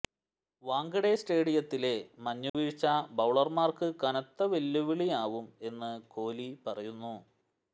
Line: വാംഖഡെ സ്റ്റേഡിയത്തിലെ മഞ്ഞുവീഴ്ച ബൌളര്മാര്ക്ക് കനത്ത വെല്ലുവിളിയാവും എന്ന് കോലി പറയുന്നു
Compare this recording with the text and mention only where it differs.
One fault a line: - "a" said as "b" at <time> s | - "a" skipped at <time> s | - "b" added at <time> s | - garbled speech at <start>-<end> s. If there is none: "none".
none